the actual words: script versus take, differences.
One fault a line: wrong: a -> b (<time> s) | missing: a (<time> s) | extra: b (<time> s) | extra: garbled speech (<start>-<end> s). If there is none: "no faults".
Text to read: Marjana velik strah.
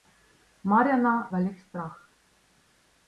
no faults